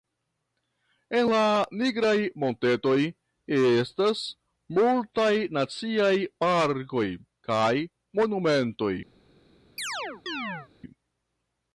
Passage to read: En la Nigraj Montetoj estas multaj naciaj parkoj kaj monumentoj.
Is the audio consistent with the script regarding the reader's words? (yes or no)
yes